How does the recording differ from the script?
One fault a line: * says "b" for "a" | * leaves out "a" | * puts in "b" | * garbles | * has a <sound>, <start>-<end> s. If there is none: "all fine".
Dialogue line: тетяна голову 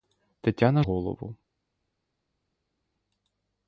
all fine